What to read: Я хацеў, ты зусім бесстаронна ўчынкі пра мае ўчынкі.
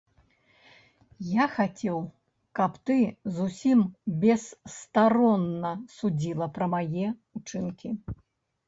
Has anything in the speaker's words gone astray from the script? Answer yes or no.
yes